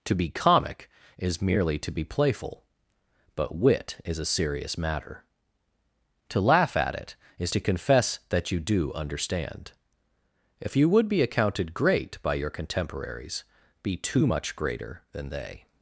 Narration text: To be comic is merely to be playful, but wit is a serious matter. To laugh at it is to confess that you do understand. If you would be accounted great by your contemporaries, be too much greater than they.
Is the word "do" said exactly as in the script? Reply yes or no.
yes